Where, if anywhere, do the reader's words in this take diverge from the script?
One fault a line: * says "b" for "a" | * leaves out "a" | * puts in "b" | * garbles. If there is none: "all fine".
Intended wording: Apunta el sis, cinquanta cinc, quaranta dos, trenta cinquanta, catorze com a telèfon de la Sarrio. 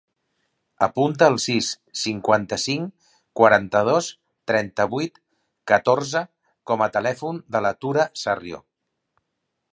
* says "vuit" for "cinquanta"
* puts in "Tura"